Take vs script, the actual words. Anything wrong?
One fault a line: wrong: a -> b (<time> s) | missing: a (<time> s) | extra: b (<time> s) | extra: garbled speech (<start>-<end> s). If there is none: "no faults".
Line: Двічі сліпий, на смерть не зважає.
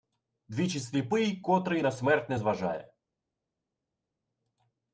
extra: котрий (1.4 s)